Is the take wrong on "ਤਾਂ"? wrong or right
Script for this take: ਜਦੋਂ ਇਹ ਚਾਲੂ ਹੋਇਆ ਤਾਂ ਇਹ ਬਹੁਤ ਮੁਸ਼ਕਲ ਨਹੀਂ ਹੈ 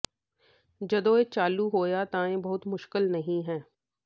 right